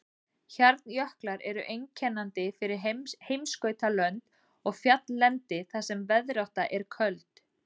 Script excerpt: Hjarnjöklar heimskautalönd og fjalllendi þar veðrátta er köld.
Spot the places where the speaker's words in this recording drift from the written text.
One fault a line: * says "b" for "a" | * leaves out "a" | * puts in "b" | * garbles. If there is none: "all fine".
* puts in "eru einkennandi fyrir"
* puts in "sem"